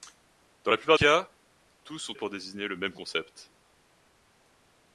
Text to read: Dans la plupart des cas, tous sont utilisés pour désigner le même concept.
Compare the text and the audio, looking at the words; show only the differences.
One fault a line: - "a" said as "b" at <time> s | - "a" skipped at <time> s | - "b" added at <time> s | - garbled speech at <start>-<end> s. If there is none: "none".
- "des" skipped at 1.0 s
- "utilisés" skipped at 2.1 s